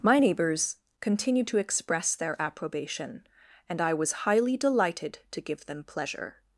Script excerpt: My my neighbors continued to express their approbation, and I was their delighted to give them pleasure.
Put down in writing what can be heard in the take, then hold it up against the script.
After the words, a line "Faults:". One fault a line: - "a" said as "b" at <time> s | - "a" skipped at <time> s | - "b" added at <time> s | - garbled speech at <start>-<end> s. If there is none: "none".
My neighbors continued to express their approbation, and I was highly delighted to give them pleasure.
Faults:
- "my" skipped at 0.2 s
- "their" said as "highly" at 4.2 s